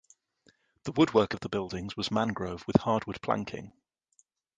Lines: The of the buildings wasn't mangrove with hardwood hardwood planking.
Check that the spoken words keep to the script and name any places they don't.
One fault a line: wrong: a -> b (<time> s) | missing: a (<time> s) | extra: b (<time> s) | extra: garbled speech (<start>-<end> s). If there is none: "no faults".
extra: woodwork (0.9 s)
wrong: wasn't -> was (2.0 s)
missing: hardwood (3.2 s)